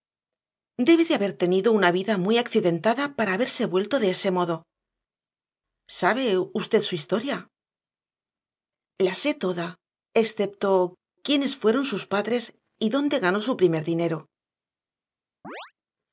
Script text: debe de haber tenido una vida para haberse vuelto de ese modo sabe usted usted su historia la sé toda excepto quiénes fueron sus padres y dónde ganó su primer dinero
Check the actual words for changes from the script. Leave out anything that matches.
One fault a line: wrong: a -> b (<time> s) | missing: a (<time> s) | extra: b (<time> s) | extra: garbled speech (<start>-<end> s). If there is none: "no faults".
extra: muy accidentada (2.2 s)
missing: usted (6.8 s)